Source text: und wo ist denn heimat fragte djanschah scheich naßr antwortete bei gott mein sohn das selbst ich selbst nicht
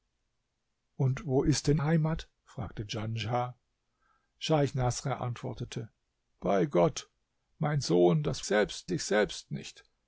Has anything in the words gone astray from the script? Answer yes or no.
no